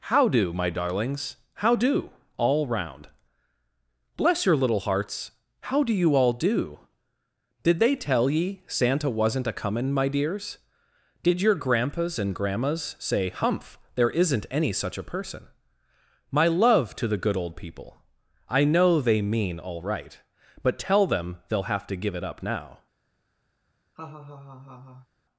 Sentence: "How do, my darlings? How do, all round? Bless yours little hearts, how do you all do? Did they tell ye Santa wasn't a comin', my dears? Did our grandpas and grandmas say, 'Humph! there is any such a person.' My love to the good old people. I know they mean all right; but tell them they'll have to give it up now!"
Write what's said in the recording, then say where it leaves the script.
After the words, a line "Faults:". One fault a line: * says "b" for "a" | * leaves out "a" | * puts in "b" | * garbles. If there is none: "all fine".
"How do, my darlings? How do, all round? Bless your little hearts, how do you all do? Did they tell ye Santa wasn't a comin', my dears? Did your grandpas and grandmas say, 'Humph! there isn't any such a person.' My love to the good old people. I know they mean all right; but tell them they'll have to give it up now!"
Faults:
* says "your" for "yours"
* says "your" for "our"
* says "isn't" for "is"